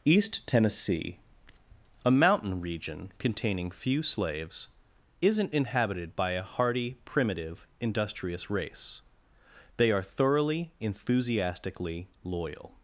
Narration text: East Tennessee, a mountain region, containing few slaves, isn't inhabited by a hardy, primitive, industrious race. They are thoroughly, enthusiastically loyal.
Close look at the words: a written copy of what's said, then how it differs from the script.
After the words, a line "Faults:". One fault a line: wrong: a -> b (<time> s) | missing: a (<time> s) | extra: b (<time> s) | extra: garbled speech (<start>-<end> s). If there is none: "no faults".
East Tennessee, a mountain region, containing few slaves, isn't inhabited by a hardy, primitive, industrious race. They are thoroughly, enthusiastically loyal.
Faults:
no faults